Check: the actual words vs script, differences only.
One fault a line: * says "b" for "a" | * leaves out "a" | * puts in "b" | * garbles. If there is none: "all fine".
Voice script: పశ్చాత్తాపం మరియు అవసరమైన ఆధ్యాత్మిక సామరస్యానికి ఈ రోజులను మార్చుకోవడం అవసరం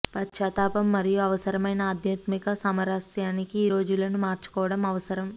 all fine